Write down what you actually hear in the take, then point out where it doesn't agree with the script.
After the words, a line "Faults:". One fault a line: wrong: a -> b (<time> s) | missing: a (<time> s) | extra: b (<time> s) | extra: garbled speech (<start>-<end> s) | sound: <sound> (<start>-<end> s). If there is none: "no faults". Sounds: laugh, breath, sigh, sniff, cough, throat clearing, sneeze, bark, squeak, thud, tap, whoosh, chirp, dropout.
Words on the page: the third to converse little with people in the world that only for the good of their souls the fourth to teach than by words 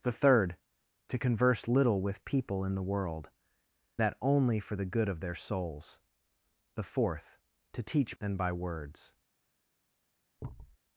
the third to converse little with people in the world that only for the good of their souls the fourth to teach than by words
Faults:
sound: thud (10.4-10.8 s)